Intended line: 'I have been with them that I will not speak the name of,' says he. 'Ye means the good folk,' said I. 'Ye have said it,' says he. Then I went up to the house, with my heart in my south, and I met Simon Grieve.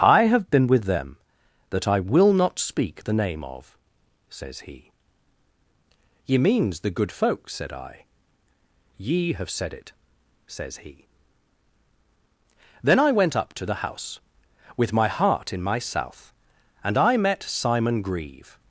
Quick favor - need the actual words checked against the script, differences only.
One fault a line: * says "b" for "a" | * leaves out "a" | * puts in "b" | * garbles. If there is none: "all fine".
all fine